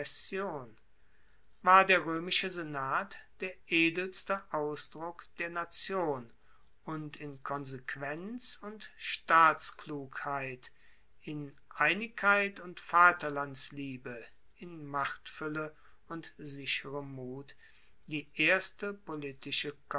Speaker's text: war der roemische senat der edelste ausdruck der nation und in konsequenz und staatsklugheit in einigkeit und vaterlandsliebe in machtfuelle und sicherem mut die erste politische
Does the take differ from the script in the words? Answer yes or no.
no